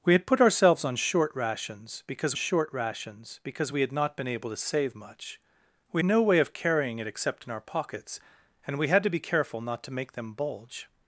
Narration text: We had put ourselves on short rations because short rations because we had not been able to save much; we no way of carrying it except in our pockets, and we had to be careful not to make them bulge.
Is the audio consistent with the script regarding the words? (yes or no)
yes